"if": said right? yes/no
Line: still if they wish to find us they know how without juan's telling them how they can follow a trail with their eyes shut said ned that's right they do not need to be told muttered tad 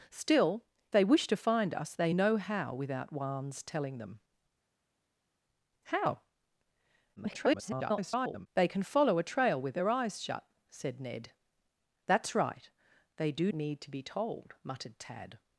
no